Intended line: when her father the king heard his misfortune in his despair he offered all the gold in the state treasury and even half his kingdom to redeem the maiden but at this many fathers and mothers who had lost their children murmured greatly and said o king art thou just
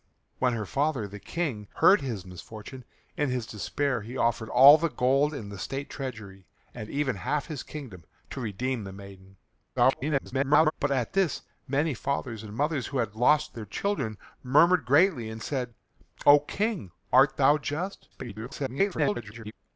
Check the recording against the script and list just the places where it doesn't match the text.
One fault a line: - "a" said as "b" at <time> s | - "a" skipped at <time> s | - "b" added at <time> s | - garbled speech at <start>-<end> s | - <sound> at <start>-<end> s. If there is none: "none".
- garbled speech at 9.8-10.7 s
- garbled speech at 18.1-19.5 s